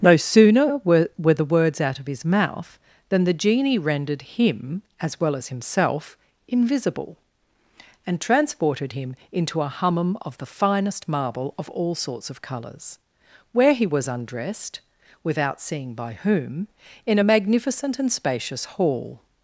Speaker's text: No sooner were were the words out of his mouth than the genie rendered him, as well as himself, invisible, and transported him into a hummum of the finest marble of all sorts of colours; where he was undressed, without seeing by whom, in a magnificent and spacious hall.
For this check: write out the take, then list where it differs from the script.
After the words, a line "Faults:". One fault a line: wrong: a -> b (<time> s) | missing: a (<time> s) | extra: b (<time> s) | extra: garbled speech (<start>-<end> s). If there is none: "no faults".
No sooner were were the words out of his mouth than the genie rendered him, as well as himself, invisible, and transported him into a hummum of the finest marble of all sorts of colours; where he was undressed, without seeing by whom, in a magnificent and spacious hall.
Faults:
no faults